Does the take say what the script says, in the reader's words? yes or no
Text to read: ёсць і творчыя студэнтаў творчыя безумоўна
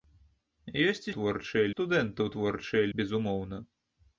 yes